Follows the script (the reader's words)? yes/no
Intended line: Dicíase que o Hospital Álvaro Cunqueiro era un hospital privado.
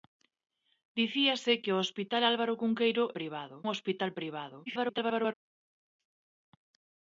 no